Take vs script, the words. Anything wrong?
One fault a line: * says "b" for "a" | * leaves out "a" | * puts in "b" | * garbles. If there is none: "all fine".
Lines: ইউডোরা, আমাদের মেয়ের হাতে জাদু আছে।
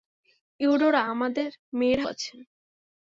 * leaves out "হাতে জাদু"